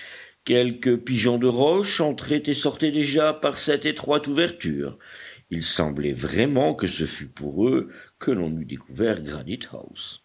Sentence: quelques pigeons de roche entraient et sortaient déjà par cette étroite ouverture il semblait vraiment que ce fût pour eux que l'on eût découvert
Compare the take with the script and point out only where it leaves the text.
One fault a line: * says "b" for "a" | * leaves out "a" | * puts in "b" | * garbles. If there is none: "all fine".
all fine